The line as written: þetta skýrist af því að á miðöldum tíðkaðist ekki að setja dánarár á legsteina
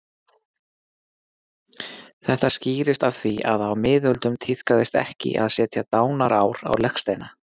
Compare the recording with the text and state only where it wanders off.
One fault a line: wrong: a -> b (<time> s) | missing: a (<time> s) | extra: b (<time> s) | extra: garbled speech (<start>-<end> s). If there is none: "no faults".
no faults